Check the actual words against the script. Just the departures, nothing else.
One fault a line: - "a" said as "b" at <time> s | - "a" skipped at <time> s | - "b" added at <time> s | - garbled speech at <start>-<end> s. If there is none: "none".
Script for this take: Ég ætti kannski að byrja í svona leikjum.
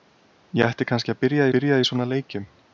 - "byrja" added at 1.6 s